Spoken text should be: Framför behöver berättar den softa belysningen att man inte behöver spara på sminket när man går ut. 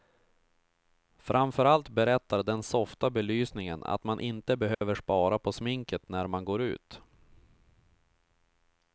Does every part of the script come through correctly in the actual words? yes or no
no